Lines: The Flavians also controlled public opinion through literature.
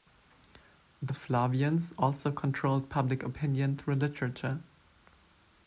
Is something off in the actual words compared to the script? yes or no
no